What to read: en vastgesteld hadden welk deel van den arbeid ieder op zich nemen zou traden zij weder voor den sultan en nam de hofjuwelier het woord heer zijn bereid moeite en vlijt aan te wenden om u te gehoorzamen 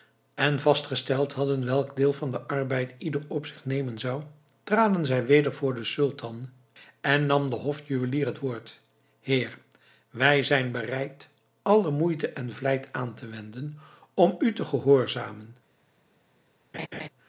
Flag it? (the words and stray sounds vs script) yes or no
yes